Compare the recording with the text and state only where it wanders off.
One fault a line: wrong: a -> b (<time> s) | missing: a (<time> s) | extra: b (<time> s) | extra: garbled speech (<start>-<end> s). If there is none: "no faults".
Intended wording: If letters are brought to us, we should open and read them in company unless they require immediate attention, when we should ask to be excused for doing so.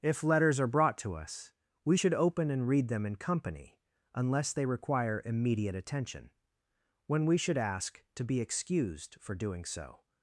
no faults